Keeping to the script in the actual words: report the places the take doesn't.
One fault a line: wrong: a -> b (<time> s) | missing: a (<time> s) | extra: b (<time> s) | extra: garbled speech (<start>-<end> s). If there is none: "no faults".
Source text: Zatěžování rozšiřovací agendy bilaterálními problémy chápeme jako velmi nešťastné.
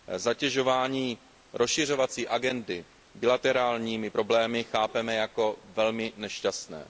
no faults